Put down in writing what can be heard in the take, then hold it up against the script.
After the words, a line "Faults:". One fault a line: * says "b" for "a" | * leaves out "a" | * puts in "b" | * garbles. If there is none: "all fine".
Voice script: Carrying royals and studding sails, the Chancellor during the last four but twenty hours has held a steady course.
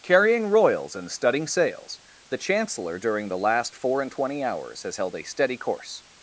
Carrying royals and studding sails, the Chancellor during the last four and twenty hours has held a steady course.
Faults:
* says "and" for "but"